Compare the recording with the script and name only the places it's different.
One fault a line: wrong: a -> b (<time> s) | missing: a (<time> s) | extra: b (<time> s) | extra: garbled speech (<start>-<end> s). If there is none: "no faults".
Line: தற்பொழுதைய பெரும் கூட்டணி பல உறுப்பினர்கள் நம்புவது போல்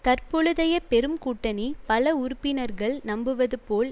no faults